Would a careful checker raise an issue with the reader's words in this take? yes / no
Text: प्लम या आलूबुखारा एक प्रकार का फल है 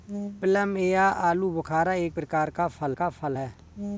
yes